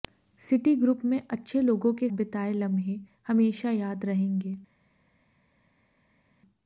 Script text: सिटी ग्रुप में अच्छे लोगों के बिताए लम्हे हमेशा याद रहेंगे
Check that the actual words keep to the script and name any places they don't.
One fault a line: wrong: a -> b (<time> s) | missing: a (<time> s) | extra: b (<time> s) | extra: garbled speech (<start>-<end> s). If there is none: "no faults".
no faults